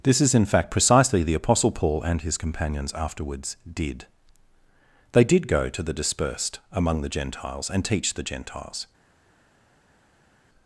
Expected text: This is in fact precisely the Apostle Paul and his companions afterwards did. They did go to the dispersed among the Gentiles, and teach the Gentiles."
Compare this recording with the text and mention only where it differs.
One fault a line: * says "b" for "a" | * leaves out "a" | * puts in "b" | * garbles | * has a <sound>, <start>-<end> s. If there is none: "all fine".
all fine